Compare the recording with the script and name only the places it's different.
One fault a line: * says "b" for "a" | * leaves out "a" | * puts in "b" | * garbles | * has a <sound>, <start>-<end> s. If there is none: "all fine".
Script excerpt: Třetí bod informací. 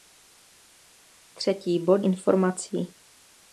all fine